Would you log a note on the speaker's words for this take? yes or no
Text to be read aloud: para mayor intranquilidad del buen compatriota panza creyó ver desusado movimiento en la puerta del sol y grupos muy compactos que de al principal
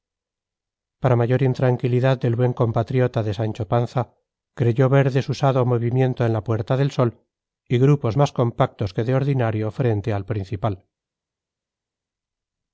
yes